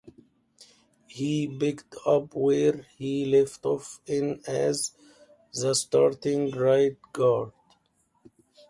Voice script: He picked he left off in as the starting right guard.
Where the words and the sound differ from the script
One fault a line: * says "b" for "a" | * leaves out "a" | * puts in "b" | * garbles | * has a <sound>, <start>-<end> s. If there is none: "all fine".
* puts in "up where"